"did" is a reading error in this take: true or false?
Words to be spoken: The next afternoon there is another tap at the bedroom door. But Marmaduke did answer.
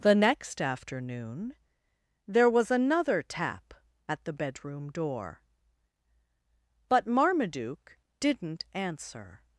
true